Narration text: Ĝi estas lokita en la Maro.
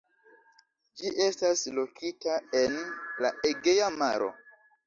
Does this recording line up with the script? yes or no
no